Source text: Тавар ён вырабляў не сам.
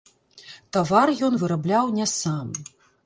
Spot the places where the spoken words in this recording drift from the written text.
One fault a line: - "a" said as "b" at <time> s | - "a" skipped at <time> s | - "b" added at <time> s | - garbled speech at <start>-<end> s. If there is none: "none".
none